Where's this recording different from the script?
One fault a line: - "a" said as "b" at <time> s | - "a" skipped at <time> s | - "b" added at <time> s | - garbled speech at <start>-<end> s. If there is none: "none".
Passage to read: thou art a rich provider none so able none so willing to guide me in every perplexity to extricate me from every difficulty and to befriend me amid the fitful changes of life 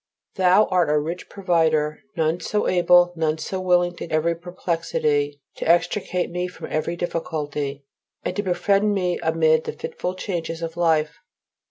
- "guide me in" skipped at 4.1 s